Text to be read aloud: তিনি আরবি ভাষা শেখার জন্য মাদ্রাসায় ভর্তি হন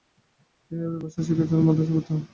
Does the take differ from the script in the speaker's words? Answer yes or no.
no